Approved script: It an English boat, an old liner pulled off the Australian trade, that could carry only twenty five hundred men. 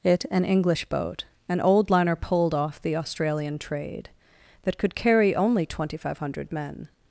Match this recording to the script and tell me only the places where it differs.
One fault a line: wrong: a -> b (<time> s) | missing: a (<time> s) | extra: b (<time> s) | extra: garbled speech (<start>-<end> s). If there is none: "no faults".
no faults